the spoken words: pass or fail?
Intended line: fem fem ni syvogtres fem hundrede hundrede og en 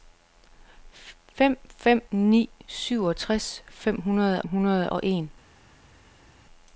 pass